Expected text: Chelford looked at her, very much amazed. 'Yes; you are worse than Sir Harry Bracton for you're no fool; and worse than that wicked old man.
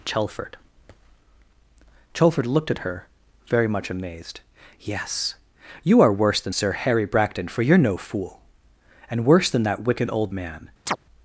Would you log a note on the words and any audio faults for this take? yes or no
yes